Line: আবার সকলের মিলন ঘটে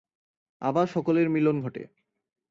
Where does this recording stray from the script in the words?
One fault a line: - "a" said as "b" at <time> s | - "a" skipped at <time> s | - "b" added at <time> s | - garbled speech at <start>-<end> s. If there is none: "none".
none